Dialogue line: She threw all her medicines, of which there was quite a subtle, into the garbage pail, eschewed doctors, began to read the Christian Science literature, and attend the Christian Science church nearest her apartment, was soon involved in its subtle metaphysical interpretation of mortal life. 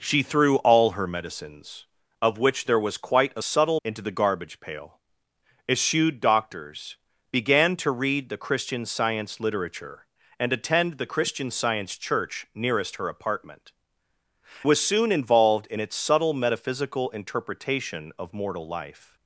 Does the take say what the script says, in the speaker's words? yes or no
yes